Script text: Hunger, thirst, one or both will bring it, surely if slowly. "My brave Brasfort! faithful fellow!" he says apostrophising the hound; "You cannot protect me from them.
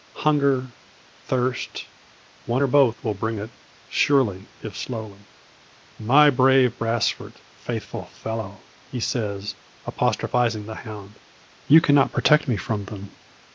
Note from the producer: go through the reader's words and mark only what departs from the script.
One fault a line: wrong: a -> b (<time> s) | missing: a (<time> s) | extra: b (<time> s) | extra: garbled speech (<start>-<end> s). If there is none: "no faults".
no faults